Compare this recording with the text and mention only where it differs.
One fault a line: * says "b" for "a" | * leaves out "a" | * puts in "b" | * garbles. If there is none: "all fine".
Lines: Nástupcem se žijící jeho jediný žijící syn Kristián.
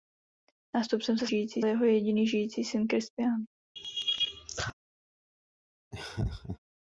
all fine